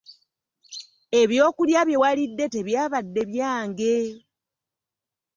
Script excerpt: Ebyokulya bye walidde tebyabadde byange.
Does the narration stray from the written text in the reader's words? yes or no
no